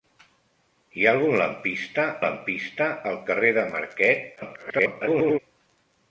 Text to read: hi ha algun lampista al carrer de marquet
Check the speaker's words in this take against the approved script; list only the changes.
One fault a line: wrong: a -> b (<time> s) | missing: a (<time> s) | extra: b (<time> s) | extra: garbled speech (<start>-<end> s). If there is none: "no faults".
extra: lampista (2.2 s)
extra: garbled speech (4.4-5.4 s)